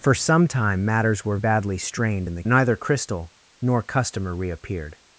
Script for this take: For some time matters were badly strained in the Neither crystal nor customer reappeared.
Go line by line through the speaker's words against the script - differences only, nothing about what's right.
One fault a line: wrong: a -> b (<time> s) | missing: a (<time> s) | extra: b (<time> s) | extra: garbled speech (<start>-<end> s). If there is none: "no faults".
no faults